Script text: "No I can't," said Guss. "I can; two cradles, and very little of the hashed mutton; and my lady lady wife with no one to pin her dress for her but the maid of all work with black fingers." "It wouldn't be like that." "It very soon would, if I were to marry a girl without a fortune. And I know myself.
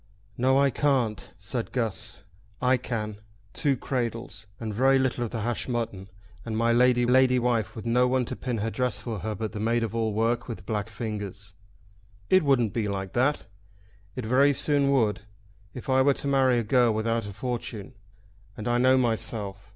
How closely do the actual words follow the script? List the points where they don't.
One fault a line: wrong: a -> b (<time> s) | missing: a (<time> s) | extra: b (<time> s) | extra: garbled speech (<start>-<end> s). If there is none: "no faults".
no faults